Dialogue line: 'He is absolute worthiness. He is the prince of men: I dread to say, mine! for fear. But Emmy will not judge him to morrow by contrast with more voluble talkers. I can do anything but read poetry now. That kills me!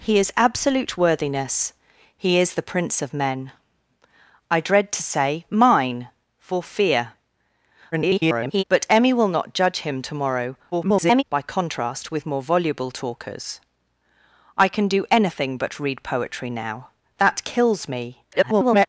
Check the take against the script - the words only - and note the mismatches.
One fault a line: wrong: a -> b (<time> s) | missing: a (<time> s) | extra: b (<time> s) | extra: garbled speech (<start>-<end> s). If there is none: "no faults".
extra: garbled speech (7.9-8.6 s)
extra: garbled speech (10.7-11.2 s)
extra: garbled speech (18.3-18.9 s)